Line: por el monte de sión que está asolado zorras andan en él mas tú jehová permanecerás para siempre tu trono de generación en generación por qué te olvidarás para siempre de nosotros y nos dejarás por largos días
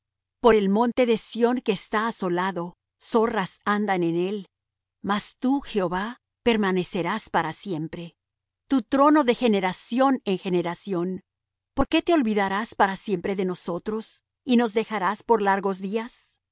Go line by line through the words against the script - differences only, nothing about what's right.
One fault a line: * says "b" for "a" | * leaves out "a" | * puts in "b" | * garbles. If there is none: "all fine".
all fine